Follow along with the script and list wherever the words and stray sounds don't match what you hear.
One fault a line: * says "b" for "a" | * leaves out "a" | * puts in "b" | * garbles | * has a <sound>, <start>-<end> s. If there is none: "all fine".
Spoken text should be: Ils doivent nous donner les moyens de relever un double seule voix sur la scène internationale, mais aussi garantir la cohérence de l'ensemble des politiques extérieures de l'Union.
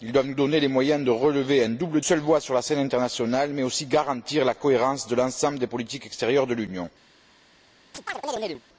* has a chirp, 7.9-8.6 s